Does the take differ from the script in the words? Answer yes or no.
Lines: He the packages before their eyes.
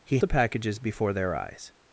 no